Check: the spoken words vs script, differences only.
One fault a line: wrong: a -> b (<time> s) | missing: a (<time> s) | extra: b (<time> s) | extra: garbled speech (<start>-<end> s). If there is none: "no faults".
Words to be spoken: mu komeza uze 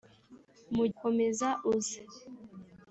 no faults